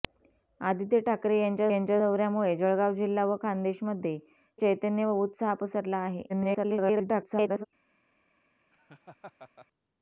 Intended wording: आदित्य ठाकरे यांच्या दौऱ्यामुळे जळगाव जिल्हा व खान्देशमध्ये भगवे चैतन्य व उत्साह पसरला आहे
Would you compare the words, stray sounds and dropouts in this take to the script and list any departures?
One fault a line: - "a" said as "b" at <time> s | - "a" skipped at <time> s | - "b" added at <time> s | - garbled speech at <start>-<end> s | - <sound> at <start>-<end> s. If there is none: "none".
- "यांच्या" added at 1.7 s
- "भगवे" skipped at 4.2 s
- garbled speech at 6.3-7.7 s
- laugh at 8.7-9.7 s